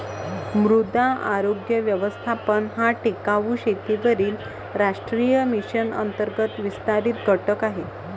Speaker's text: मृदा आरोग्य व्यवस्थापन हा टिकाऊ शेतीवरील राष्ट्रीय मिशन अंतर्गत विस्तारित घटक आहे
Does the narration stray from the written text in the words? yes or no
no